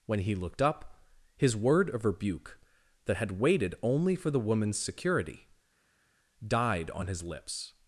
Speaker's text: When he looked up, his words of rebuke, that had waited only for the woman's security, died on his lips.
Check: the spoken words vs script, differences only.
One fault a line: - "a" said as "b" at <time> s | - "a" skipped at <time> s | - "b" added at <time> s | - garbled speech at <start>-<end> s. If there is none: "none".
- "words" said as "word" at 1.6 s